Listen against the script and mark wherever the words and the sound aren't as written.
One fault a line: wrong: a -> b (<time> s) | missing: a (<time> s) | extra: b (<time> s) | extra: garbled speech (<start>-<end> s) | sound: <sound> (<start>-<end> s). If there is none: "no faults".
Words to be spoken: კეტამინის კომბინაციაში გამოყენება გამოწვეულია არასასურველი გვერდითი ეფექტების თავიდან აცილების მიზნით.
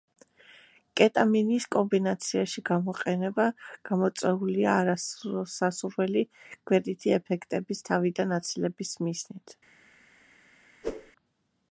sound: whoosh (10.8-11.1 s)